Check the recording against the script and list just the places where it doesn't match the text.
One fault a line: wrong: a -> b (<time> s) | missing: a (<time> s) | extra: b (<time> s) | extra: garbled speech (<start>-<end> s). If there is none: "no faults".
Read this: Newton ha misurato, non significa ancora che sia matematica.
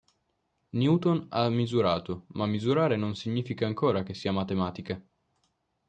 extra: ma misurare (2.3 s)